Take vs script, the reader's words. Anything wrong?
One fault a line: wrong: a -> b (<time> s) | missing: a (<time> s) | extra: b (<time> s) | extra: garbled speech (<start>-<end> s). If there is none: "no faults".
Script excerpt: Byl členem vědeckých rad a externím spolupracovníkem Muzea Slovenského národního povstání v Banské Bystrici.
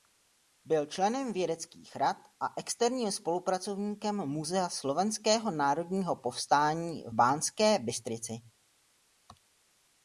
no faults